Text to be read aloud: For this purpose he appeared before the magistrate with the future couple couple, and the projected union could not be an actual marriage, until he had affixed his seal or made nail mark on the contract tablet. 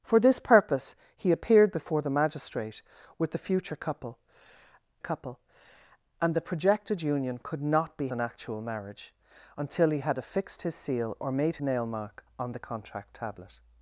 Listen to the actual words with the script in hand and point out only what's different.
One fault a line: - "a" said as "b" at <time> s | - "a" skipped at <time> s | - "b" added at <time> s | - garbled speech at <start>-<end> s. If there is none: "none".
none